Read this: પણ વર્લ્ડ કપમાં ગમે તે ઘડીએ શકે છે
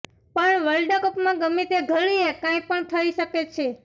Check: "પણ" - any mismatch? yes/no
no